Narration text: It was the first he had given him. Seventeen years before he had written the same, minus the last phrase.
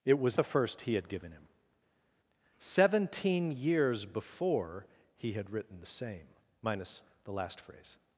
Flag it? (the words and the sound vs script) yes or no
no